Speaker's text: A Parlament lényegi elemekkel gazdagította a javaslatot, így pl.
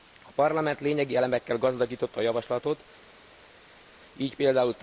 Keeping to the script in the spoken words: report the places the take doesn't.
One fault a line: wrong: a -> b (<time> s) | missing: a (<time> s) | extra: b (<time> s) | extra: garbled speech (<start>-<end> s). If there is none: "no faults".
no faults